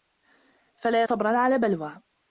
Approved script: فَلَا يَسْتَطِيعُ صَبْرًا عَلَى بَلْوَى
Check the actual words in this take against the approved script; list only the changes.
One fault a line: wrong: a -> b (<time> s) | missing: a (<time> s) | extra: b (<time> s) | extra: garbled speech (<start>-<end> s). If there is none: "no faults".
missing: يَسْتَطِيعُ (1.0 s)